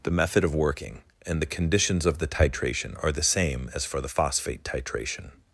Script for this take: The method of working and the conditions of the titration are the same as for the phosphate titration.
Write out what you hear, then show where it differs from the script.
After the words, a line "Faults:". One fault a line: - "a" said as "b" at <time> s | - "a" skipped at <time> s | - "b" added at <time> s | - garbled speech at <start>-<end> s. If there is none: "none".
The method of working and the conditions of the titration are the same as for the phosphate titration.
Faults:
none